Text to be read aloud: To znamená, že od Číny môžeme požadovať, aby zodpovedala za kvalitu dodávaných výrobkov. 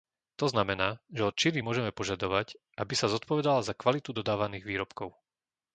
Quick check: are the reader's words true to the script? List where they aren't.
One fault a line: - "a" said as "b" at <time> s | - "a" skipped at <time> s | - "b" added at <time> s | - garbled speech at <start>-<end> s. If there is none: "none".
- "sa" added at 2.9 s